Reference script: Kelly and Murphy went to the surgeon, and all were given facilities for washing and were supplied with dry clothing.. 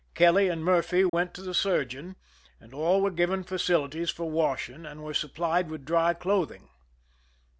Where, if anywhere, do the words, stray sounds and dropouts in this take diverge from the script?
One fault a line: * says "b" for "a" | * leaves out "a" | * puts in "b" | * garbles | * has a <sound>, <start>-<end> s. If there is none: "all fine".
* has a dropout, 1.1-1.1 s